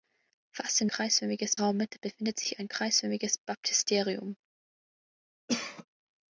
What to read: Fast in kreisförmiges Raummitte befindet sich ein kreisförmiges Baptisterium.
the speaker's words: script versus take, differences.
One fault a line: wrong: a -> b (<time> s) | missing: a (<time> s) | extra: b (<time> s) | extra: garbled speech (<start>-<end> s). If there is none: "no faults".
no faults